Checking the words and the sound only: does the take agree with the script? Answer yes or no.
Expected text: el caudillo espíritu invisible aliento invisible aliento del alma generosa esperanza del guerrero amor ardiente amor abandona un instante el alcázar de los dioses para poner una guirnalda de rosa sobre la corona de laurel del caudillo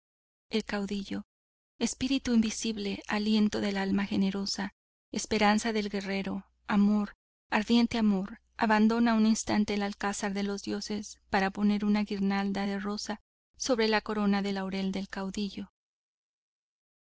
no